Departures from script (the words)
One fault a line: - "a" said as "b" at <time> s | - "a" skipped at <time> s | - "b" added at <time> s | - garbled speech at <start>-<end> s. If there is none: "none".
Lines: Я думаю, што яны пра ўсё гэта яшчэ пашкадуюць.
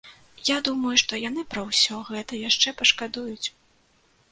none